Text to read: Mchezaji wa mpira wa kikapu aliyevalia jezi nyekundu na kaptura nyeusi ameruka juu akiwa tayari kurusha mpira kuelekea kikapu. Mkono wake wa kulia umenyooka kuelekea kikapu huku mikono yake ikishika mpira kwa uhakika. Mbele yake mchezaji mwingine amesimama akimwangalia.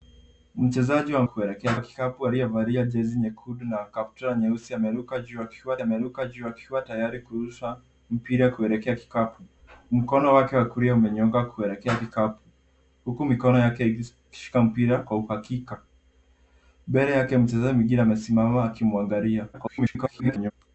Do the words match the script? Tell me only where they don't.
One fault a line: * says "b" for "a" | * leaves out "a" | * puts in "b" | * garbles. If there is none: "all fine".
* says "kuelekea" for "mpira"
* puts in "ameruka juu akiwa"
* garbles